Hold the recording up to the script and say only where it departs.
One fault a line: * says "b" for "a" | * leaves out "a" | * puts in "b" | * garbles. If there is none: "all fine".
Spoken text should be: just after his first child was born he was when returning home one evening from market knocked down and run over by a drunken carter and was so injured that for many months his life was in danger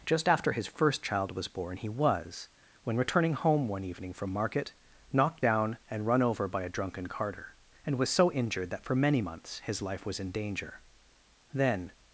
* puts in "then"